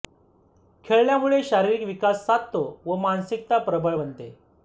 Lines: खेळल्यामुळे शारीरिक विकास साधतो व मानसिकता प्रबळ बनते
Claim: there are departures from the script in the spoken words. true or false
false